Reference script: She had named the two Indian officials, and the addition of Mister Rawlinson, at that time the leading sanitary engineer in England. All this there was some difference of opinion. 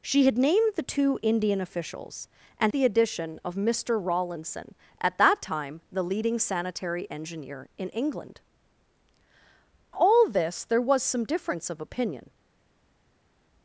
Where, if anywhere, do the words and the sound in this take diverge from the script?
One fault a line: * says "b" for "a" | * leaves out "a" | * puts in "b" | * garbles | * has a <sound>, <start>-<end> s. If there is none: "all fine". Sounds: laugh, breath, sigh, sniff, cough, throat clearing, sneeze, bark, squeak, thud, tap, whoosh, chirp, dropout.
all fine